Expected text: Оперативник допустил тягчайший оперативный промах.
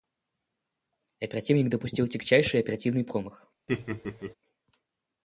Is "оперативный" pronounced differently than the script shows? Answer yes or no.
no